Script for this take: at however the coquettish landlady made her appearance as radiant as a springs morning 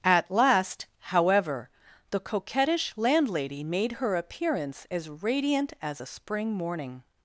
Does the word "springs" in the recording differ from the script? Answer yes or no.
yes